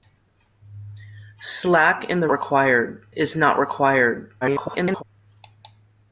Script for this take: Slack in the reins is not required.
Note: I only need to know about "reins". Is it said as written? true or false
false